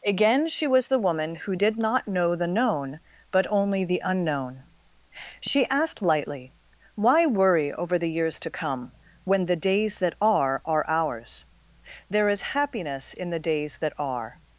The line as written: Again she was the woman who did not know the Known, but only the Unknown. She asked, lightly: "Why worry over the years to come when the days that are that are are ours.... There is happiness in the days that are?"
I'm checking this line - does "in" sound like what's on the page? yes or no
yes